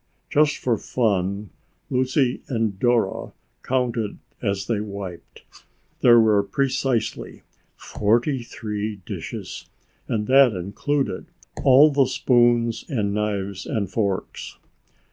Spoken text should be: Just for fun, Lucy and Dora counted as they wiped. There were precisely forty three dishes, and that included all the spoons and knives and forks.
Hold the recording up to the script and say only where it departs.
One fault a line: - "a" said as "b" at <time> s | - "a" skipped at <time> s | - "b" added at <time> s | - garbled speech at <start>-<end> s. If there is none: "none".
none